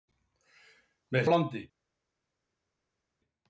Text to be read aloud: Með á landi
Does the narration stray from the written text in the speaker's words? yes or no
no